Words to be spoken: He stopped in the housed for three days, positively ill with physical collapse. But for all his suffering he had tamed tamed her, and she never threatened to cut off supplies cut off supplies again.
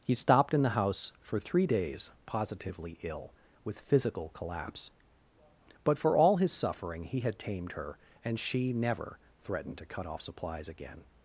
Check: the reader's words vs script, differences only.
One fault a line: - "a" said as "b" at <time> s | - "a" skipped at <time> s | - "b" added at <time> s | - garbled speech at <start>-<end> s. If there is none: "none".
- "housed" said as "house" at 0.7 s
- "tamed" skipped at 7.7 s
- "cut off supplies" skipped at 10.7 s